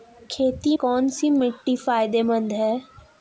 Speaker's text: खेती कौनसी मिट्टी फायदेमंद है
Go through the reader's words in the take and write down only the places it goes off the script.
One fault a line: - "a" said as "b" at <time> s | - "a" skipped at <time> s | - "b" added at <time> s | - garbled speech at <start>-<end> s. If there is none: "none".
none